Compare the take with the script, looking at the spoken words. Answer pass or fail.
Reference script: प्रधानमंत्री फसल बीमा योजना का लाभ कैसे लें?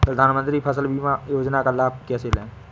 pass